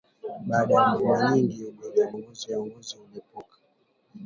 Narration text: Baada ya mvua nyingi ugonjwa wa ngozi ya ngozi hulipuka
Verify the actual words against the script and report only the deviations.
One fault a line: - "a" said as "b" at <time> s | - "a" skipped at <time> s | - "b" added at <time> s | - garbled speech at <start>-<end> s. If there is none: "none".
none